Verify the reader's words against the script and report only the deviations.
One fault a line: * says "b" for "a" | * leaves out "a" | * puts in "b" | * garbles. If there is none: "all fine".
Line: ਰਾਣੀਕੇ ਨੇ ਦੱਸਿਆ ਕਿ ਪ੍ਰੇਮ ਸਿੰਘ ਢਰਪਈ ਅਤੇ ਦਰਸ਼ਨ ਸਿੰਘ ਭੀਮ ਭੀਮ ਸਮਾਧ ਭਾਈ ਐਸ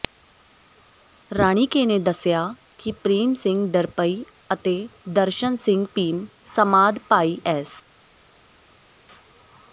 * leaves out "ਭੀਮ"